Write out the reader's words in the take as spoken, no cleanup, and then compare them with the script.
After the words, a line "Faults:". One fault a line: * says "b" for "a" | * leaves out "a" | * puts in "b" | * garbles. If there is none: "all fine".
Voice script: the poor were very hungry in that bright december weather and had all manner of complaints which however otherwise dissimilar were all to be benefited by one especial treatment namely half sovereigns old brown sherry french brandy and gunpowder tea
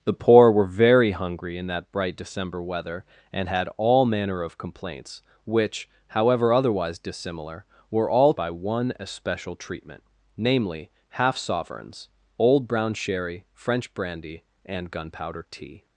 the poor were very hungry in that bright december weather and had all manner of complaints which however otherwise dissimilar were all by one especial treatment namely half sovereigns old brown sherry french brandy and gunpowder tea
Faults:
* leaves out "to be benefited"